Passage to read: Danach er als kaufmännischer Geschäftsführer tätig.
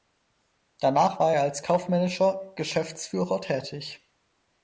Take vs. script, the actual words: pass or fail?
fail